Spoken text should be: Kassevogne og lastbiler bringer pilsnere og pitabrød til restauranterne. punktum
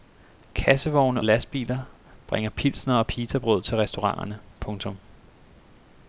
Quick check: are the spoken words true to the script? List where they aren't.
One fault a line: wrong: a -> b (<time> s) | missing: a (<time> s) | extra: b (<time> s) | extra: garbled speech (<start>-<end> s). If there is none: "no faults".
missing: og (1.2 s)